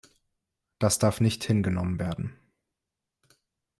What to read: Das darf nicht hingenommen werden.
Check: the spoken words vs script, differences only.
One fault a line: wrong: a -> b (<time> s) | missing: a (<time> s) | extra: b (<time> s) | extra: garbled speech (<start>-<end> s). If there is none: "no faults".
no faults